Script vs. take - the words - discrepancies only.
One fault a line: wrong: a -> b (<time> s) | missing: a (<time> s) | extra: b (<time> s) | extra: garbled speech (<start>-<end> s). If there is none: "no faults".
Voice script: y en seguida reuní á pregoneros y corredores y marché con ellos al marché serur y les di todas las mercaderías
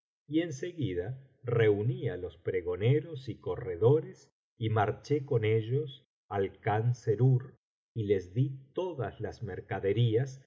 extra: los (2.2 s)
wrong: marché -> khan (6.6 s)